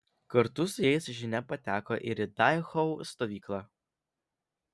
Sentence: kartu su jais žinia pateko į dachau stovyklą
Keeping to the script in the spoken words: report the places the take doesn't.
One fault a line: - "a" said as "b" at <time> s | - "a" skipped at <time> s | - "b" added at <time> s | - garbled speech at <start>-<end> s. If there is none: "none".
- "ir" added at 2.1 s